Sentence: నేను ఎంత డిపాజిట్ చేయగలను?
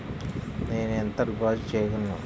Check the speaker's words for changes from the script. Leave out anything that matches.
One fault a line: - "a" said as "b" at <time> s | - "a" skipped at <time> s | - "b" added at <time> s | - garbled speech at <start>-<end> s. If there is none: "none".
none